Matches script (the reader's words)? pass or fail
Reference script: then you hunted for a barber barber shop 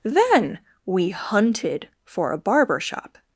fail